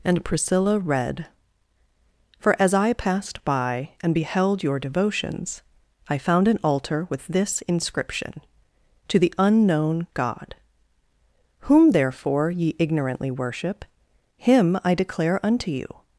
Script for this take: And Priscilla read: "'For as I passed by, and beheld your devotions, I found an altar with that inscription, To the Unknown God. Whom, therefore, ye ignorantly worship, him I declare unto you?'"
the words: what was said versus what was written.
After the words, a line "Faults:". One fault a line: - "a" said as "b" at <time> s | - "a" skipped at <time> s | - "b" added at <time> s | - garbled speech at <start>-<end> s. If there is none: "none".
And Priscilla read: "'For as I passed by, and beheld your devotions, I found an altar with this inscription, To the Unknown God. Whom, therefore, ye ignorantly worship, him I declare unto you?'"
Faults:
- "that" said as "this" at 7.3 s